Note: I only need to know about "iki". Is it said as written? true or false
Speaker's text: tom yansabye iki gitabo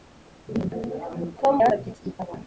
true